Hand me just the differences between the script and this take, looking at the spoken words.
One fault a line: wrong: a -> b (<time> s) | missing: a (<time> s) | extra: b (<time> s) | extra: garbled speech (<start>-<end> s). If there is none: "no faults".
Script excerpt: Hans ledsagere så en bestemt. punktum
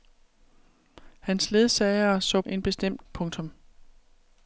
no faults